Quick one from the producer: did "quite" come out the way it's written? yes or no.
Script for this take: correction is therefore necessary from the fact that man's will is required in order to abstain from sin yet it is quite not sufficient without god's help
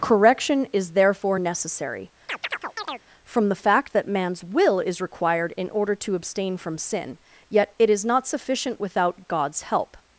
no